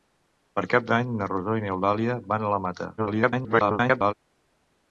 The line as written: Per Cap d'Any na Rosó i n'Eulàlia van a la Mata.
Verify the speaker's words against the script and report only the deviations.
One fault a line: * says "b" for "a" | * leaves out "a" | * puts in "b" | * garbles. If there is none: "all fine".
* garbles